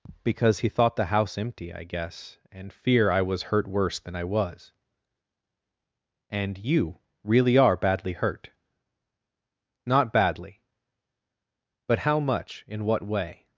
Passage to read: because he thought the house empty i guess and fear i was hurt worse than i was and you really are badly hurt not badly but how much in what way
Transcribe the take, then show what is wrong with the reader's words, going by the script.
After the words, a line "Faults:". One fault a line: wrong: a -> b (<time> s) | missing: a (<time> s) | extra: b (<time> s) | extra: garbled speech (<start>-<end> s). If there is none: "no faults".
because he thought the house empty i guess and fear i was hurt worse than i was and you really are badly hurt not badly but how much in what way
Faults:
no faults